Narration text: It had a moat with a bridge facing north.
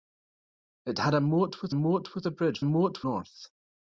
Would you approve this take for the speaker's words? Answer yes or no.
no